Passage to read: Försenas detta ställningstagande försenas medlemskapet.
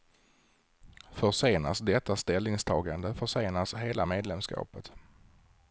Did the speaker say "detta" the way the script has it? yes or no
yes